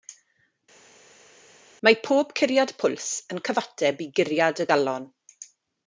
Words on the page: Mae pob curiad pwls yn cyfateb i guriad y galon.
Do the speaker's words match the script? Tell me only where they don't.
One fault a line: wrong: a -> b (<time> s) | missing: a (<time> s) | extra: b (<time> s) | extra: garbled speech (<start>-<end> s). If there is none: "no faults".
no faults